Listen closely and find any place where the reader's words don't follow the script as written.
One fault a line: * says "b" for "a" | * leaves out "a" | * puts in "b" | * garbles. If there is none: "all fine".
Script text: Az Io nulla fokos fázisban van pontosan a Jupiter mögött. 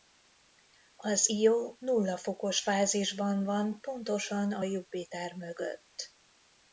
all fine